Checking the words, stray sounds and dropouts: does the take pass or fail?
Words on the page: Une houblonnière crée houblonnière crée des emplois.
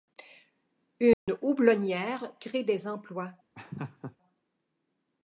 fail